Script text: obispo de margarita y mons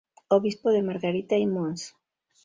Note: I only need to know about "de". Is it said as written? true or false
true